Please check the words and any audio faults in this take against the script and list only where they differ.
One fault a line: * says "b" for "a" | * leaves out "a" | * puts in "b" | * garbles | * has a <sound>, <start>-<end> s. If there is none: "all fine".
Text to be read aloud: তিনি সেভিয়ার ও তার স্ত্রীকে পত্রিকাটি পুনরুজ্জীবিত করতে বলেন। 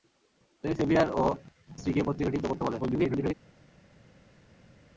* leaves out "তার"
* leaves out "পুনরুজ্জীবিত"
* garbles